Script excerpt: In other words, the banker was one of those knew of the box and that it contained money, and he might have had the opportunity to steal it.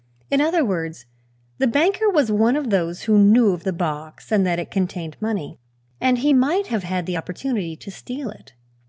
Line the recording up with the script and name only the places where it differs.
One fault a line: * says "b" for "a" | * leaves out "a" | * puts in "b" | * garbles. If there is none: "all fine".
* puts in "who"